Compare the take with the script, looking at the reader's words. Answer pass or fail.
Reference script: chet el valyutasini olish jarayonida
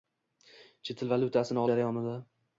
fail